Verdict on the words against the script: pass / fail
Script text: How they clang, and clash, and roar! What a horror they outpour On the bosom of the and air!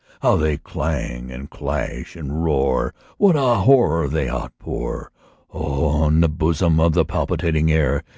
fail